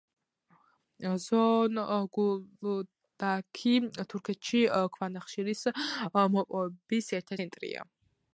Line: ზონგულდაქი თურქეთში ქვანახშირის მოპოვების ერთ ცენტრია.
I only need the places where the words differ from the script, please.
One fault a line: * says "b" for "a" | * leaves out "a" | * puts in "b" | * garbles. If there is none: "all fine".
all fine